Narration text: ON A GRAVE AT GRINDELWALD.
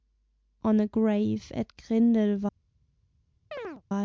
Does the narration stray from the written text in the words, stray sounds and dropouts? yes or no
yes